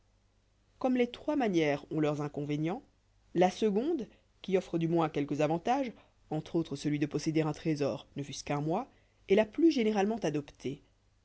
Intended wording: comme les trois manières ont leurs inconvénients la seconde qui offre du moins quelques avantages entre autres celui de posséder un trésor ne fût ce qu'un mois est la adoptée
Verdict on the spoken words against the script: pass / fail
fail